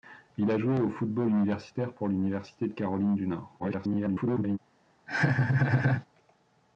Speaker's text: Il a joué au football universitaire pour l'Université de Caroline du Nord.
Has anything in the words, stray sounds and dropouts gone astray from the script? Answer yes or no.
yes